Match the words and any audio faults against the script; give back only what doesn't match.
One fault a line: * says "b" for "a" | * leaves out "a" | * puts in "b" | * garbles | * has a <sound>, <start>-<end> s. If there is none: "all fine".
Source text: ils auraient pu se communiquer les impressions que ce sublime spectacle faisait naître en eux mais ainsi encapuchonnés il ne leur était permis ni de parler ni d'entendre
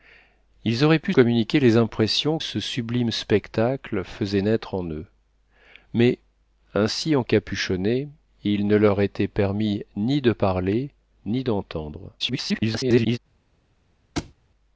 * leaves out "se"
* leaves out "que"
* garbles
* has a thud, 14.2-14.3 s